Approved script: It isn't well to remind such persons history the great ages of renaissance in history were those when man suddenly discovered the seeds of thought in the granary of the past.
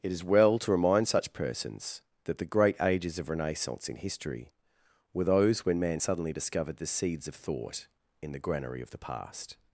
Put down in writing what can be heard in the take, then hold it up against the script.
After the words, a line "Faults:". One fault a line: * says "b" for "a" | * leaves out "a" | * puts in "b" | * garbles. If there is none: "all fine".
It is well to remind such persons that the great ages of renaissance in history were those when man suddenly discovered the seeds of thought in the granary of the past.
Faults:
* says "is" for "isn't"
* says "that" for "history"